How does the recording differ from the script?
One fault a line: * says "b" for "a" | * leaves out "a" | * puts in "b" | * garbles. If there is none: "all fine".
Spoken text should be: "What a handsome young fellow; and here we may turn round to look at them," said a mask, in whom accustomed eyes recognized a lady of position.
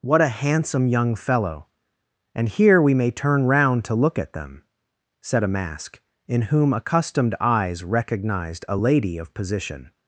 all fine